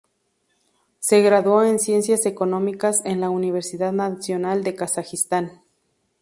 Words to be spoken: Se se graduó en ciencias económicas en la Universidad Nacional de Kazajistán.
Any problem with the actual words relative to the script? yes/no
yes